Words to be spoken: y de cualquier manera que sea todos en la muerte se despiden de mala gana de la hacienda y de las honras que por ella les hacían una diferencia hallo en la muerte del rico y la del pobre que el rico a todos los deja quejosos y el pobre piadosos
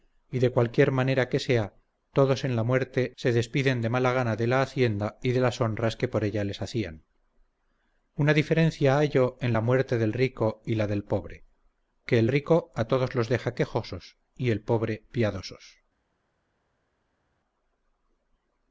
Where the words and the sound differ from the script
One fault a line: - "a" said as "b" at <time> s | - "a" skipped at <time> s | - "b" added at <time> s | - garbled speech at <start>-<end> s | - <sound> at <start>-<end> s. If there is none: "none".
none